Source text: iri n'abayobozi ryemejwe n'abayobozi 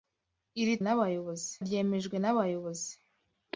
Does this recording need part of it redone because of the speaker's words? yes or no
no